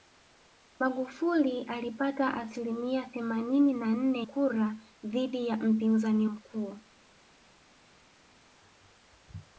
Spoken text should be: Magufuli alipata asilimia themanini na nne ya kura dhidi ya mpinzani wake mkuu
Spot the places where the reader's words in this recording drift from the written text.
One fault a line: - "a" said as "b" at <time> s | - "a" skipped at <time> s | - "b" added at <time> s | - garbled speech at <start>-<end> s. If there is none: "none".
- "ya" skipped at 4.3 s
- "wake" skipped at 6.3 s